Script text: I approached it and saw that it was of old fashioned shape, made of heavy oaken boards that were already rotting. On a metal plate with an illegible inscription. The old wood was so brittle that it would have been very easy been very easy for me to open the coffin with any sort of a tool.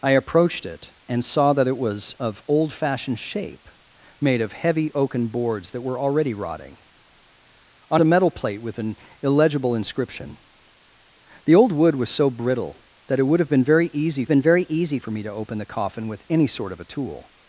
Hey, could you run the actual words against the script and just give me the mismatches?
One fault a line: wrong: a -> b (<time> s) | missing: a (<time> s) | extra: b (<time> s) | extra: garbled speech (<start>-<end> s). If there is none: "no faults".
no faults